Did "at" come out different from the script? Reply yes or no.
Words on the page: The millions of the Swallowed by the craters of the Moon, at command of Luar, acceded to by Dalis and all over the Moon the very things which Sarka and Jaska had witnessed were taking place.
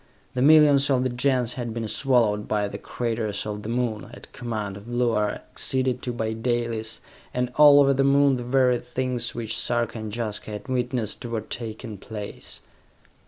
no